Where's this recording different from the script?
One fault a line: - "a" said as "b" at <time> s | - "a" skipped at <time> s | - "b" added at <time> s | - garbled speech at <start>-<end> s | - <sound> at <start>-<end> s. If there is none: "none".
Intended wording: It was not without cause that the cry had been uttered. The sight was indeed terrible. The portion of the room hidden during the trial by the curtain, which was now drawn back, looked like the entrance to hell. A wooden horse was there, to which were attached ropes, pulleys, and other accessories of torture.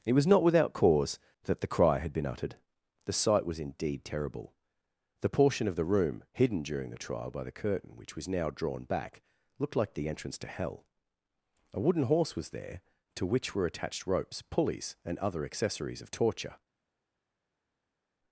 none